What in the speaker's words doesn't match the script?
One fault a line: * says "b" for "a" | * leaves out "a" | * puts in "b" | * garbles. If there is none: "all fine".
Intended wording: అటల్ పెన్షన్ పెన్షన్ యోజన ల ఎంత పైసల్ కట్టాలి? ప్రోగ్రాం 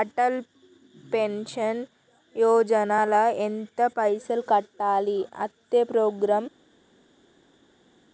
* leaves out "పెన్షన్"
* puts in "అత్తే"